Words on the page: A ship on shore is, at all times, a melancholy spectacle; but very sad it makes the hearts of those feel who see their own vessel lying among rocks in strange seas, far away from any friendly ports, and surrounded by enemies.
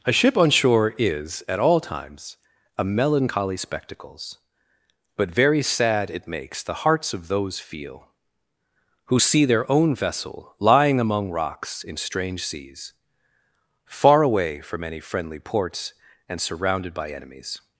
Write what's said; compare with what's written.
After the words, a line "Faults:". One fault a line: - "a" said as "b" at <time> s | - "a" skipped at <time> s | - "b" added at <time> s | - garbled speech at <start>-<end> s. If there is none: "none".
A ship on shore is, at all times, a melancholy spectacles; but very sad it makes the hearts of those feel who see their own vessel lying among rocks in strange seas, far away from any friendly ports, and surrounded by enemies.
Faults:
- "spectacle" said as "spectacles" at 3.5 s